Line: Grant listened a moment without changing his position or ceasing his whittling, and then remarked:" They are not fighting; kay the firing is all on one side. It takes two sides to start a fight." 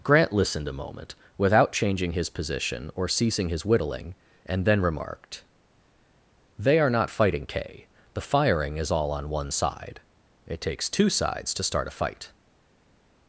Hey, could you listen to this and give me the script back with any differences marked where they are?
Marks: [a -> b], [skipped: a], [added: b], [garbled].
Grant listened a moment without changing his position or ceasing his whittling, and then remarked:" They are not fighting; kay the firing is all on one side. It takes two sides to start a fight."